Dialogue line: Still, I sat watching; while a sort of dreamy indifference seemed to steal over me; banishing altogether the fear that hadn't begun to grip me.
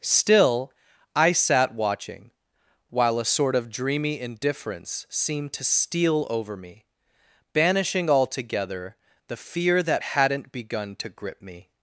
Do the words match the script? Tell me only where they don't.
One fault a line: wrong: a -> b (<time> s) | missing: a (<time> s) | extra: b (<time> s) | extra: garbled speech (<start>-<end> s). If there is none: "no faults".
no faults